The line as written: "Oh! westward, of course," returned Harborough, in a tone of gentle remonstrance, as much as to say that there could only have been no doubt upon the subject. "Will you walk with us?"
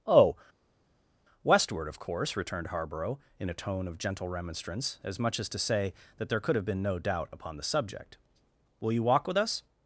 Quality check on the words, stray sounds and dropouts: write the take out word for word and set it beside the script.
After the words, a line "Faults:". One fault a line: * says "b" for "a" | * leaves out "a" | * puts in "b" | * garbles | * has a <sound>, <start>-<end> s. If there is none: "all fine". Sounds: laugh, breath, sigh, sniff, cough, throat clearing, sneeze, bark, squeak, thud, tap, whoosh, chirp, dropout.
"Oh! westward, of course," returned Harborough, in a tone of gentle remonstrance, as much as to say that there could have been no doubt upon the subject. "Will you walk with us?"
Faults:
* leaves out "only"